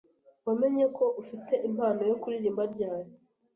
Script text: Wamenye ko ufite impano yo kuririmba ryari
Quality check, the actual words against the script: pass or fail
pass